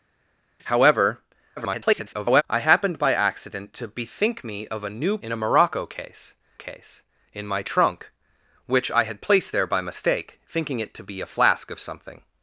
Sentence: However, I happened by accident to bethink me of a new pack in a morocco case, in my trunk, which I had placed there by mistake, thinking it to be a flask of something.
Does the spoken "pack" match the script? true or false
false